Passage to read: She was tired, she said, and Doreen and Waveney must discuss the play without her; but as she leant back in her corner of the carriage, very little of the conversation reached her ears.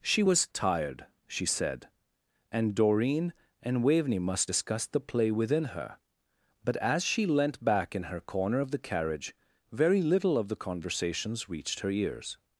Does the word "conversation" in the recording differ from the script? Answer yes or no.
yes